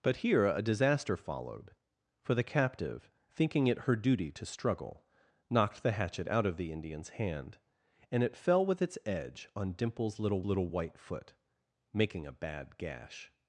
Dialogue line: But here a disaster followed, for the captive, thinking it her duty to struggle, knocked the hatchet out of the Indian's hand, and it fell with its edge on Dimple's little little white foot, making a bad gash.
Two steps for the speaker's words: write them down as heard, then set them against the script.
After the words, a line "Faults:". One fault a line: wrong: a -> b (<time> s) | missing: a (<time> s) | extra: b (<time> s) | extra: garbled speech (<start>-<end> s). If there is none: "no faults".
But here a disaster followed, for the captive, thinking it her duty to struggle, knocked the hatchet out of the Indian's hand, and it fell with its edge on Dimple's little little white foot, making a bad gash.
Faults:
no faults